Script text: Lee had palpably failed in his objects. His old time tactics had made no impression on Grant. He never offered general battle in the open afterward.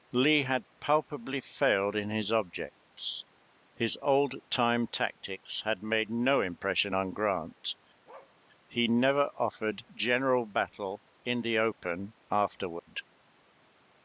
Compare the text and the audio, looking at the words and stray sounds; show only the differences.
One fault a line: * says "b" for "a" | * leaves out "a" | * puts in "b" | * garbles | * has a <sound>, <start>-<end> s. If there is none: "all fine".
* has a bark, 8.1-8.4 s
* has a dropout, 12.8-12.9 s